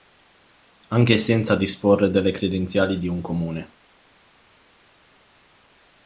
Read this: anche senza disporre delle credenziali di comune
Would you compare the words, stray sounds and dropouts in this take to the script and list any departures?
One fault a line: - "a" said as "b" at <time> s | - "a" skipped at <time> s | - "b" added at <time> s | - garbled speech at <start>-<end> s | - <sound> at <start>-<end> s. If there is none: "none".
- "un" added at 3.1 s